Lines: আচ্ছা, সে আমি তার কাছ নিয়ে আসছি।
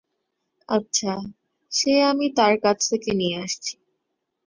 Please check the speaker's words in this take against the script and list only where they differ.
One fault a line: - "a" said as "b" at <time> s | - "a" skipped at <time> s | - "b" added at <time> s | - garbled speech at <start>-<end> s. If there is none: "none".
- "থেকে" added at 2.9 s